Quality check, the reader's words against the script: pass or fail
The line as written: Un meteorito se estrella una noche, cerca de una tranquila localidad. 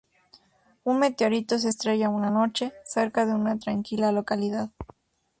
pass